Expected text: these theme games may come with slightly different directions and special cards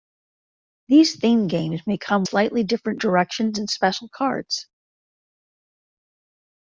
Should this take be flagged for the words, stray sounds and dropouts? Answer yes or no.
yes